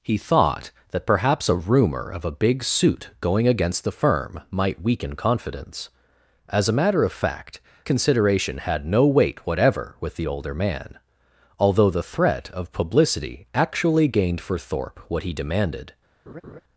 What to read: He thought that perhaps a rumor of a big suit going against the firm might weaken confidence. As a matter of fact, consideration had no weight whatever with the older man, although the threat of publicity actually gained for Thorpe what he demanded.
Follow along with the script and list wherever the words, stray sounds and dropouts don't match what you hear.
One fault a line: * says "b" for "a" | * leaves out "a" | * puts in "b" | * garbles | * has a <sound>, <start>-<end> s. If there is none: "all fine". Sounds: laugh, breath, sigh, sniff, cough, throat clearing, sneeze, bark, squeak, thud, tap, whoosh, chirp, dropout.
* has a laugh, 16.3-16.6 s